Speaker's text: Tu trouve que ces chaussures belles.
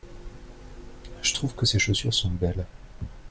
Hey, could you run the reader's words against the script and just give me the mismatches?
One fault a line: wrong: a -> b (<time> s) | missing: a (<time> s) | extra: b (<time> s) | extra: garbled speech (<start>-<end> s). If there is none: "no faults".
wrong: Tu -> Je (1.2 s)
extra: sont (2.1 s)